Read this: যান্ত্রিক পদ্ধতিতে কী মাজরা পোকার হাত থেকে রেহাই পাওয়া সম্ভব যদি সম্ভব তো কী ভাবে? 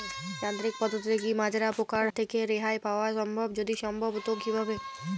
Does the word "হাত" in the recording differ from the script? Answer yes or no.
yes